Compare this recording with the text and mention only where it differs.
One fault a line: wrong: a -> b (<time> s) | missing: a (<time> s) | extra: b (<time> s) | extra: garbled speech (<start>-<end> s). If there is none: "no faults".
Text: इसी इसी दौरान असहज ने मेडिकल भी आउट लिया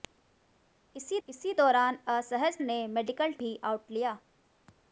no faults